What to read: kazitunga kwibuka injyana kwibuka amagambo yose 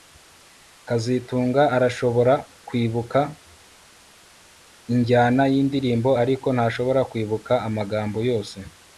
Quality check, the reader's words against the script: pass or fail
fail